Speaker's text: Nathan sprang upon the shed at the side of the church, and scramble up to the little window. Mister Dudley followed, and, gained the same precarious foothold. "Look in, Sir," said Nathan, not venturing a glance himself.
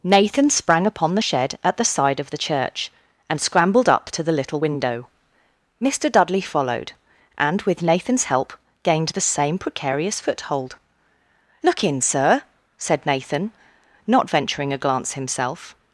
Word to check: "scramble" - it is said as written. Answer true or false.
false